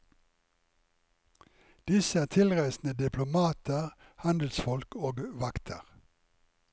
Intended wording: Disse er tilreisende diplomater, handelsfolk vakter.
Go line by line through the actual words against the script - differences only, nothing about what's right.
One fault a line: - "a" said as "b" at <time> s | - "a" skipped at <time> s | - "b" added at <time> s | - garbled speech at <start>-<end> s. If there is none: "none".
- "og" added at 5.0 s